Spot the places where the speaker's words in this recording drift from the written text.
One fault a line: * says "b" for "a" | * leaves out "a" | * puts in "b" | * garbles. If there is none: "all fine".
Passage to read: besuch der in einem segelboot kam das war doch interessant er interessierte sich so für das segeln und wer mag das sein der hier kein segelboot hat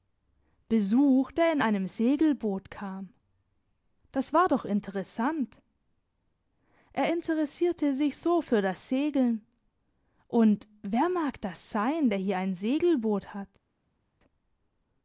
* says "ein" for "kein"